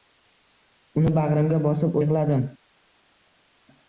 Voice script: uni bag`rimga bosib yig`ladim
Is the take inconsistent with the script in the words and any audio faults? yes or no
no